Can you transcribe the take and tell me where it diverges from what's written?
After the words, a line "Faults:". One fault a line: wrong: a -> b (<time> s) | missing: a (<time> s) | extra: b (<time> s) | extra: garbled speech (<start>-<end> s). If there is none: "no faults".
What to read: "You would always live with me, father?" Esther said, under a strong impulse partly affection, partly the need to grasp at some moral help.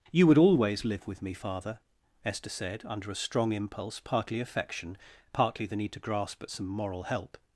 "You would always live with me, father?" Esther said, under a strong impulse partly affection, partly the need to grasp at some moral help.
Faults:
no faults